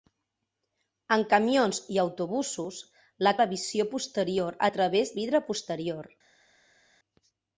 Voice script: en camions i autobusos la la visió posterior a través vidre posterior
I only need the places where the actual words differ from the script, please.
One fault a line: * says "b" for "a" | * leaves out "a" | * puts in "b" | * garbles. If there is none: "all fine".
all fine